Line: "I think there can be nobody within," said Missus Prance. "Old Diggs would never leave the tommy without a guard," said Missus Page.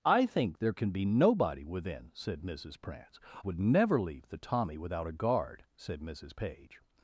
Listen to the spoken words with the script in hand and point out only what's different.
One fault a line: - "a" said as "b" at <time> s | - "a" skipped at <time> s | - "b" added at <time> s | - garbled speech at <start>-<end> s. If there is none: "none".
- "Old Diggs" skipped at 3.2 s